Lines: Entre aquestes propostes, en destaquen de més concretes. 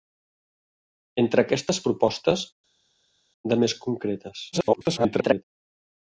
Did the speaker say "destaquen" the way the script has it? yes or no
no